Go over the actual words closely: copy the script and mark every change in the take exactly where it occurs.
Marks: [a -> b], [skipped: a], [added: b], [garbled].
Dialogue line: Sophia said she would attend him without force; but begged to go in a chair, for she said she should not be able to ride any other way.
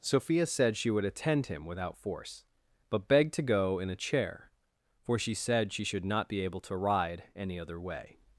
Sophia said she would attend him without force; but begged to go in a chair, for she said she should not be able to ride any other way.